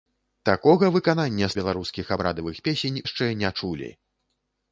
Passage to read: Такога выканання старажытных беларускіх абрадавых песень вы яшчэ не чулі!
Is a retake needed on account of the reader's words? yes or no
yes